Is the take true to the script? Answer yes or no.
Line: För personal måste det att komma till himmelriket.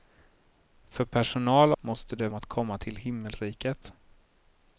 yes